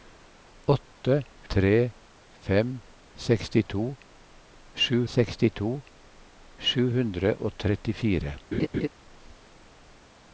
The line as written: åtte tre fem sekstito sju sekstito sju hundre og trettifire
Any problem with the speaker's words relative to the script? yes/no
no